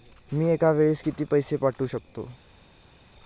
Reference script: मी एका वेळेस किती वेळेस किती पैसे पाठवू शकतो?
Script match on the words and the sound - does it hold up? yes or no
no